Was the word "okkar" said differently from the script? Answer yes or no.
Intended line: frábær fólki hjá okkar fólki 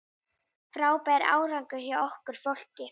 no